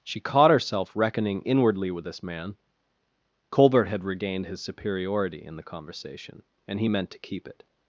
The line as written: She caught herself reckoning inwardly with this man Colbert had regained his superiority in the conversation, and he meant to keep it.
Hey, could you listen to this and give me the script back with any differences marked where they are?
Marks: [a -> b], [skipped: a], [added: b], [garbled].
She caught herself reckoning inwardly with this man Colbert had regained his superiority in the conversation, and he meant to keep it.